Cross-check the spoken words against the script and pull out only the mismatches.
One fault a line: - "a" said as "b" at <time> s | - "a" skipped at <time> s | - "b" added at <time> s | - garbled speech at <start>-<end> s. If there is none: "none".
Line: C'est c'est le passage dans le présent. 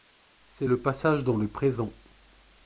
- "c'est" skipped at 0.7 s